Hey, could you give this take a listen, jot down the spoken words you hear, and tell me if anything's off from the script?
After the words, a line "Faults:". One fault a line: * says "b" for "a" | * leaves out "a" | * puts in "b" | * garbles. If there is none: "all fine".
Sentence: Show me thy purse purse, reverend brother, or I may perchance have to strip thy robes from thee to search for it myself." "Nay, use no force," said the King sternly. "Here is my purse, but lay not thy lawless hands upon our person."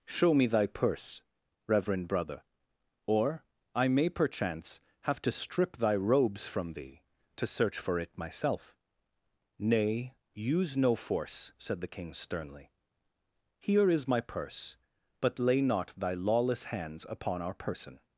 Show me thy purse, reverend brother, or I may perchance have to strip thy robes from thee to search for it myself." "Nay, use no force," said the King sternly. "Here is my purse, but lay not thy lawless hands upon our person."
Faults:
* leaves out "purse"